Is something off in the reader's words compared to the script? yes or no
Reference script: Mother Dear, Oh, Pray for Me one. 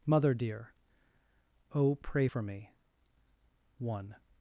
no